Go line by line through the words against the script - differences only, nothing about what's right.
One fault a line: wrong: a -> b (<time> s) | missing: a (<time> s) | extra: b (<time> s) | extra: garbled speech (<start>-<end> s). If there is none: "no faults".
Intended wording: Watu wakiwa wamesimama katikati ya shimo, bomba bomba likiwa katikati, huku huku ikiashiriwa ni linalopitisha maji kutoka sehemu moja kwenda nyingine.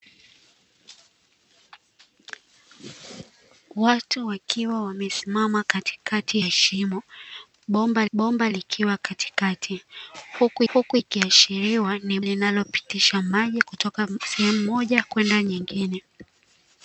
no faults